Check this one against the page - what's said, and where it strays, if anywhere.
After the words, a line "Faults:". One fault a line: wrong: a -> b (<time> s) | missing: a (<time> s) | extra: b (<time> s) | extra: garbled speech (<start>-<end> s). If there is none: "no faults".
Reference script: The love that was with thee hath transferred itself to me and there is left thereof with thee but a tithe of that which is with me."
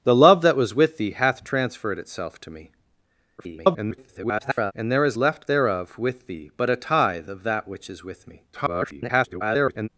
The love that was with thee hath transferred itself to me [garbled] and there is left thereof with thee but a tithe of that which is with me." [garbled]
Faults:
extra: garbled speech (3.4-4.7 s)
extra: garbled speech (8.5-9.9 s)